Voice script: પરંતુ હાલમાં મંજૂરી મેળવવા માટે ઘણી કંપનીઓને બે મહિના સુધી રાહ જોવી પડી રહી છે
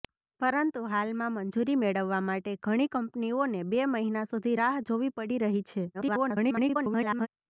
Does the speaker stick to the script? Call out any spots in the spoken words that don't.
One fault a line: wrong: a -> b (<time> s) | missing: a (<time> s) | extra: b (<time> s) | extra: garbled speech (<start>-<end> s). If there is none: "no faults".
extra: garbled speech (5.9-7.3 s)